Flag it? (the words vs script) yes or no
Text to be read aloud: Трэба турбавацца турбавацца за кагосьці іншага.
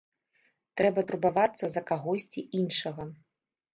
yes